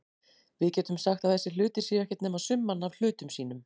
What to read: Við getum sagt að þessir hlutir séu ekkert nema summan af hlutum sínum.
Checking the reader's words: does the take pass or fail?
pass